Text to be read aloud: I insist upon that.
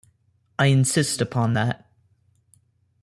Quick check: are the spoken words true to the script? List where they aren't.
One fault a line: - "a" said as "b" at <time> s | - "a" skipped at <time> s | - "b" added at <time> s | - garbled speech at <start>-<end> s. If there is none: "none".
none